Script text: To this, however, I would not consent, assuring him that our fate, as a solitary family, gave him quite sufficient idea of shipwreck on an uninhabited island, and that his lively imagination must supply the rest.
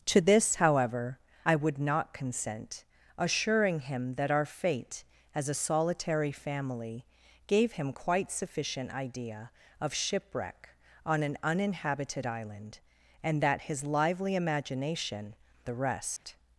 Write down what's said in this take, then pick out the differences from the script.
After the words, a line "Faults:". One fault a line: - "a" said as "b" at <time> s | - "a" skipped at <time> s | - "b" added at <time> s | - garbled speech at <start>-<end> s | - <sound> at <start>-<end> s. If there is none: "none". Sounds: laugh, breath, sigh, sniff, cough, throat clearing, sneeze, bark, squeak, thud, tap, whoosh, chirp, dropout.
To this, however, I would not consent, assuring him that our fate, as a solitary family, gave him quite sufficient idea of shipwreck on an uninhabited island, and that his lively imagination the rest.
Faults:
- "must supply" skipped at 15.3 s
- dropout at 16.2-16.2 s